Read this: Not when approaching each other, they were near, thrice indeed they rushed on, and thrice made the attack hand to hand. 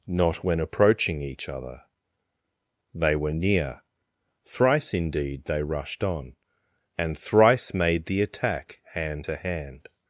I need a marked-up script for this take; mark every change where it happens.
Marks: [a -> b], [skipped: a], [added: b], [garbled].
Not when approaching each other, they were near, thrice indeed they rushed on, and thrice made the attack hand to hand.